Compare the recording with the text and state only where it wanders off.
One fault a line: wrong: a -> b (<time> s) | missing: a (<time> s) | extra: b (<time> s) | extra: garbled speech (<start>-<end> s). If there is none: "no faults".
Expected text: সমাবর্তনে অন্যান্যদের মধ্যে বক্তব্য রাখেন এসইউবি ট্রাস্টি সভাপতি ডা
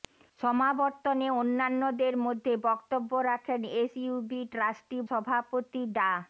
no faults